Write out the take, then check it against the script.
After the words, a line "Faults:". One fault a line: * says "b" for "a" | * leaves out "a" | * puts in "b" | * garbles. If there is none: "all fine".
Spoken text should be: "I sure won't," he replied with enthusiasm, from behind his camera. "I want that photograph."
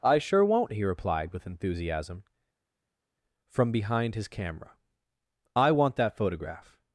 "I sure won't," he replied with enthusiasm, from behind his camera. "I want that photograph."
Faults:
all fine